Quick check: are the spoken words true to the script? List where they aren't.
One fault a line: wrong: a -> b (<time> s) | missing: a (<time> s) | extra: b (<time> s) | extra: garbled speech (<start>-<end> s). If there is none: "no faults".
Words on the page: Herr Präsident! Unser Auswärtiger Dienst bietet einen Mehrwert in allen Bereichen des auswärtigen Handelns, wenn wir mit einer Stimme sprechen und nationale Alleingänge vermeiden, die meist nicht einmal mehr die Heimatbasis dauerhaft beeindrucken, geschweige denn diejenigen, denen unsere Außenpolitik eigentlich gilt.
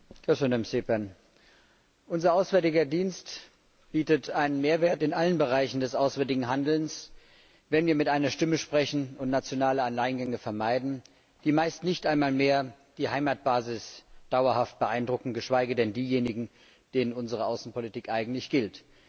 no faults